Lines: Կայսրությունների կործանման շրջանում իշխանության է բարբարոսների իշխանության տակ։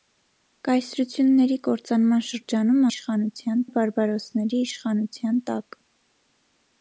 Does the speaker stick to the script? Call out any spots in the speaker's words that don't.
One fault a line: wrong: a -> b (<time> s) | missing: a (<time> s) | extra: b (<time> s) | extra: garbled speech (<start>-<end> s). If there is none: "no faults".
no faults